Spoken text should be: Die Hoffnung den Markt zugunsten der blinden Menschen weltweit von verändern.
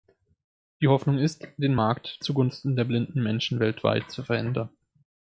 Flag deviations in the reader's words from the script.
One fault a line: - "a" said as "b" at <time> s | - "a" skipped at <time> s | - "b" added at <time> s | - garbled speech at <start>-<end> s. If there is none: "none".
- "ist" added at 1.2 s
- "von" said as "zu" at 4.1 s